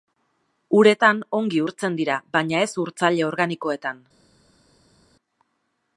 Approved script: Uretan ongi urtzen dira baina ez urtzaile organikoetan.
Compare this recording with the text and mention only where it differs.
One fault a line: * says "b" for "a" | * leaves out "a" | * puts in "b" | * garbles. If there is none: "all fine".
all fine